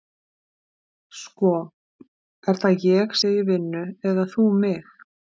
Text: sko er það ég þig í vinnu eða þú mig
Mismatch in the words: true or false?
false